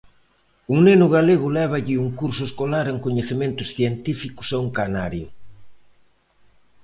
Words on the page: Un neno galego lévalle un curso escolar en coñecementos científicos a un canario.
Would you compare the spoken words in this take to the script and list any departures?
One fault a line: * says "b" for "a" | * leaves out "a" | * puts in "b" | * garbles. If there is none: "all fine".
all fine